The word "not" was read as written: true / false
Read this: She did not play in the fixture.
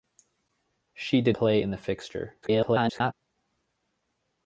false